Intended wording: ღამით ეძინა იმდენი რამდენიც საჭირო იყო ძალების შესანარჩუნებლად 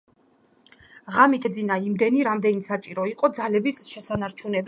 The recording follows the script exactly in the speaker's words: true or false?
true